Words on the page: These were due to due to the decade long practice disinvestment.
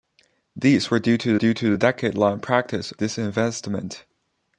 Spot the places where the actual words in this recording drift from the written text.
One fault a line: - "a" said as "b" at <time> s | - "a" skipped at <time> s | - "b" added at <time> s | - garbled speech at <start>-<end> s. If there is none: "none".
none